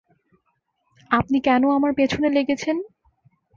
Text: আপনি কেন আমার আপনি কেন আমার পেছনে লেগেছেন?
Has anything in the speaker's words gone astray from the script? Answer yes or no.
yes